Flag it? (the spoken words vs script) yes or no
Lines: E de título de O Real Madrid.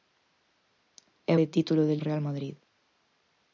no